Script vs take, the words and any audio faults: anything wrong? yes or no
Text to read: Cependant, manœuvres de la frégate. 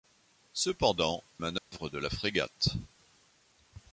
yes